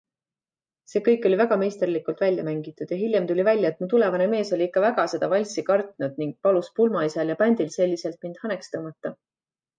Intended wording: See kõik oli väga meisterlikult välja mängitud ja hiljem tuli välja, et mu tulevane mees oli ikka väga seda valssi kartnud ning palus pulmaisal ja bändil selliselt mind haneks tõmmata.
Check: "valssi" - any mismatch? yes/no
no